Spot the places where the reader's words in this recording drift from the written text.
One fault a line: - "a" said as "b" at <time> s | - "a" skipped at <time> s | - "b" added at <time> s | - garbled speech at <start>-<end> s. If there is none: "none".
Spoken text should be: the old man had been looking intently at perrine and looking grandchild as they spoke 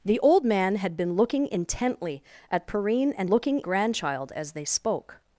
none